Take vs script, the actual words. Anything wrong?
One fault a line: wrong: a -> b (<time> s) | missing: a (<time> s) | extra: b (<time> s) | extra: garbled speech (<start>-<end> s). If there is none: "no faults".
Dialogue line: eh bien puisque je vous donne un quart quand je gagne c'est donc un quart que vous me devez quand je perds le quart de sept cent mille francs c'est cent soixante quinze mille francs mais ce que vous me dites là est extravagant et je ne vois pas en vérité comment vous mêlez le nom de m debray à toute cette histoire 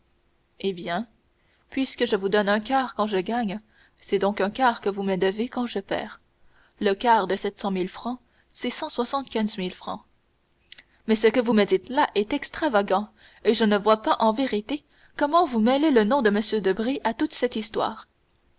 no faults